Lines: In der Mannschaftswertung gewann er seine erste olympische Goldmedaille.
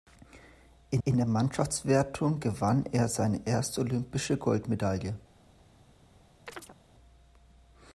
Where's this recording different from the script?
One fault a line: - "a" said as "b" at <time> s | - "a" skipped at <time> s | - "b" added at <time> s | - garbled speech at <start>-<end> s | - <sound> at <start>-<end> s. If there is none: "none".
- "in" added at 1.0 s
- chirp at 6.5-6.8 s